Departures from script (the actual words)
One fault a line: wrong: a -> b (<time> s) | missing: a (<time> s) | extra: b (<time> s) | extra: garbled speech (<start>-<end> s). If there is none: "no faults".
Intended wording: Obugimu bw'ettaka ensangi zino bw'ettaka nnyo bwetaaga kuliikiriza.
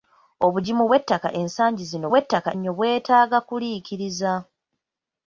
no faults